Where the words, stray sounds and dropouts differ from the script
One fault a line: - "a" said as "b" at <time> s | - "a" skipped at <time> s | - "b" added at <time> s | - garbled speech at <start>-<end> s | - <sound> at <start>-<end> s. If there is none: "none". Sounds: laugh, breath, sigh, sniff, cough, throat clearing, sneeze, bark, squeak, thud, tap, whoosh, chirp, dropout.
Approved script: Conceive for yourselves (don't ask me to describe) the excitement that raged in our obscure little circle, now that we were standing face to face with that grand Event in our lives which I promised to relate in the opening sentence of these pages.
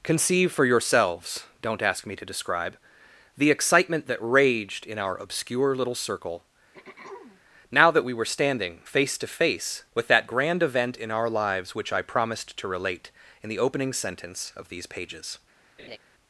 - throat clearing at 6.7-7.4 s
- laugh at 15.8-16.0 s